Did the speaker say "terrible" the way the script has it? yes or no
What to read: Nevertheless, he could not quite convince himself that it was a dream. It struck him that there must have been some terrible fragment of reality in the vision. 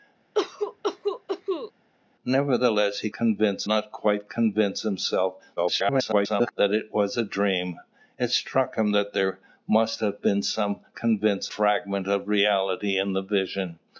no